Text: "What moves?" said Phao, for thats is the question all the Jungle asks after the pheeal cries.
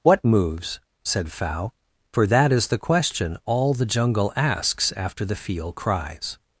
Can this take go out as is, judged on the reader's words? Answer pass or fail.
fail